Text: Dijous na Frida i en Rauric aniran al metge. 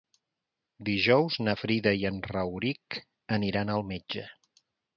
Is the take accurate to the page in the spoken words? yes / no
yes